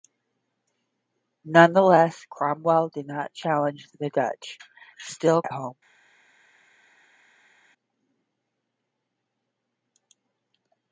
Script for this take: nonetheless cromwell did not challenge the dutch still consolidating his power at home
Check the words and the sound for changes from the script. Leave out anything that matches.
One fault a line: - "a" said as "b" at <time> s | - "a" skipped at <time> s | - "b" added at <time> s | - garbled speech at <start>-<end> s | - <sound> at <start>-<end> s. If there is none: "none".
- "consolidating his power" skipped at 5.4 s